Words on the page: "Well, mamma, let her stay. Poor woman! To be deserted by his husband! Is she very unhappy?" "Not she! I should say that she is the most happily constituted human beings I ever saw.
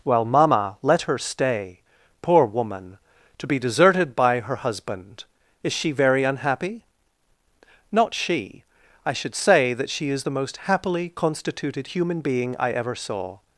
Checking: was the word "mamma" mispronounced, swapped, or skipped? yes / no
no